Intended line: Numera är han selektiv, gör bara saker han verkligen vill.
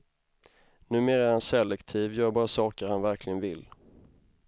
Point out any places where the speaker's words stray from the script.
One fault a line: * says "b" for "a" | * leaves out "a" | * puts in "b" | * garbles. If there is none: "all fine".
all fine